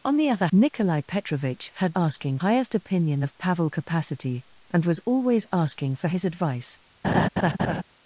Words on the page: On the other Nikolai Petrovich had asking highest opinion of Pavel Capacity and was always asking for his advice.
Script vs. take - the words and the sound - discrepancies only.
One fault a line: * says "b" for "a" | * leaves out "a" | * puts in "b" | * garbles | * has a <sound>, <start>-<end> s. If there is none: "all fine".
* has a laugh, 7.0-7.8 s